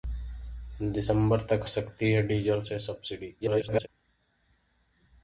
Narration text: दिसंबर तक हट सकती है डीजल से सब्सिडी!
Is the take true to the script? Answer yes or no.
no